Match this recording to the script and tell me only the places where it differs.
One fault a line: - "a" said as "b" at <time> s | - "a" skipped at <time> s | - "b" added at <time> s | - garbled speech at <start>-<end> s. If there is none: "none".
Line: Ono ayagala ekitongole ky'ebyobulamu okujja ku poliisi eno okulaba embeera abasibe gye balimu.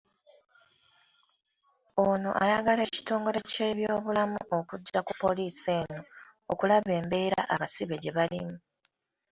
none